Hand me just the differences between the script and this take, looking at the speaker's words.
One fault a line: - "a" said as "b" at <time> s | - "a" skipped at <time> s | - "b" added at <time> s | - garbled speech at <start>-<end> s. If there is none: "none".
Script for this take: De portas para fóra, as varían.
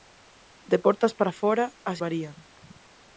none